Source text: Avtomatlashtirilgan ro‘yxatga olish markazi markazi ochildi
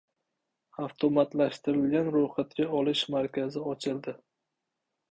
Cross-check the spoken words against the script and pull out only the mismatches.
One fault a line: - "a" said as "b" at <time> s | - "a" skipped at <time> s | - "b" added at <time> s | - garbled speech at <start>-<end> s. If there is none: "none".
- "markazi" skipped at 3.7 s